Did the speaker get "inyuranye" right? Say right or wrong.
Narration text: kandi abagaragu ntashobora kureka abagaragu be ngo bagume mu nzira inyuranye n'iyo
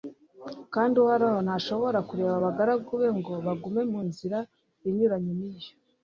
right